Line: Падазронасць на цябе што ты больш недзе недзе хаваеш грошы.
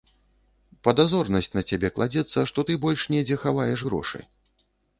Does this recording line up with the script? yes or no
no